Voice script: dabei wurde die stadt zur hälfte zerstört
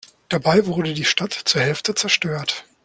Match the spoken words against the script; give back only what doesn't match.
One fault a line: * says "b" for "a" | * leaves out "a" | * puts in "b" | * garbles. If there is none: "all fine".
all fine